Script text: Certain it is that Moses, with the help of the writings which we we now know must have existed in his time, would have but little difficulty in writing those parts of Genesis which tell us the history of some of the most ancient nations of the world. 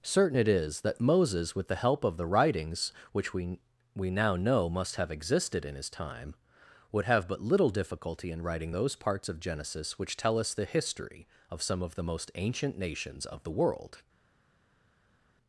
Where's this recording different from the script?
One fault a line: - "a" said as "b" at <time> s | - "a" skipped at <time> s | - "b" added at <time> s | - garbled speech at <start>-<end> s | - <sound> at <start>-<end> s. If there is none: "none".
none